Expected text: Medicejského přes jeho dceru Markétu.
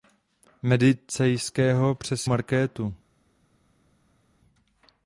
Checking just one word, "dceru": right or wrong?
wrong